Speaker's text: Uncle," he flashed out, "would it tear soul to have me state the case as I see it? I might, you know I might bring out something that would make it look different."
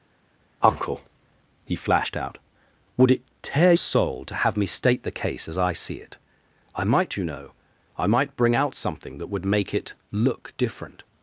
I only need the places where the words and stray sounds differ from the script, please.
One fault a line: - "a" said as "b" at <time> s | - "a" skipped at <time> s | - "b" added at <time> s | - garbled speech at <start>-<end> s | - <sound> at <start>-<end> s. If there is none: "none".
none